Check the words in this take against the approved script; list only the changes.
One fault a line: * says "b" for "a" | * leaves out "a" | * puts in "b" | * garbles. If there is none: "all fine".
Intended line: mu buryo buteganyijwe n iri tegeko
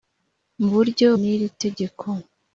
* leaves out "buteganyijwe"